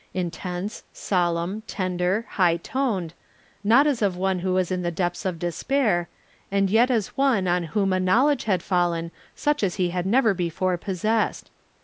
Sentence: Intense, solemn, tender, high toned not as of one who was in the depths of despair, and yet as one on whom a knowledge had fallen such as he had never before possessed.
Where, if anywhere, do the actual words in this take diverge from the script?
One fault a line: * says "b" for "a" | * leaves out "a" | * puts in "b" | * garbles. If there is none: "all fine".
all fine